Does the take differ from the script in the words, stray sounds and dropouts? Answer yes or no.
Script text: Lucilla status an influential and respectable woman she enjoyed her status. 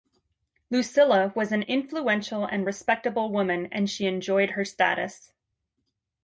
yes